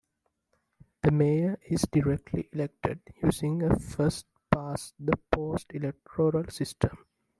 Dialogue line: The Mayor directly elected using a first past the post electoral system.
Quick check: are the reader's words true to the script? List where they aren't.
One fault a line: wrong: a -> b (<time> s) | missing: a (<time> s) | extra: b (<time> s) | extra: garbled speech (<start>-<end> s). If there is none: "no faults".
extra: is (1.6 s)